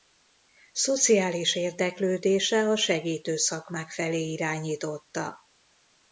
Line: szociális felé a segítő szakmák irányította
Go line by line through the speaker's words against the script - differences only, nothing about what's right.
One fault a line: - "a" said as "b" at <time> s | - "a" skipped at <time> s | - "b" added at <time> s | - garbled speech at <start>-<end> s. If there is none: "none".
- "felé" said as "érdeklődése" at 1.6 s
- "felé" added at 3.9 s